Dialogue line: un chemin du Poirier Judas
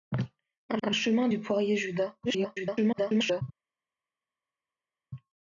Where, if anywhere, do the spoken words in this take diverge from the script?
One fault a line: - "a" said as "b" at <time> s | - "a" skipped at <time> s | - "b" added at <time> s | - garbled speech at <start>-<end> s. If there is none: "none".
- "un" added at 0.8 s
- garbled speech at 2.2-3.4 s